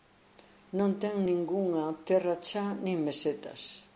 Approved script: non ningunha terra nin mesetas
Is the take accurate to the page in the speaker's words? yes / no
no